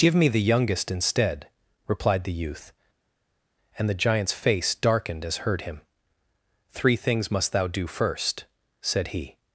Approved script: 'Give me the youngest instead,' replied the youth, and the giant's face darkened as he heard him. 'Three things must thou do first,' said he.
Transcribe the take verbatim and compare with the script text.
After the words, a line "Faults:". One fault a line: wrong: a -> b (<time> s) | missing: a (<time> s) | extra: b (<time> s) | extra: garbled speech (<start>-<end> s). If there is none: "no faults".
'Give me the youngest instead,' replied the youth, and the giant's face darkened as heard him. 'Three things must thou do first,' said he.
Faults:
missing: he (5.4 s)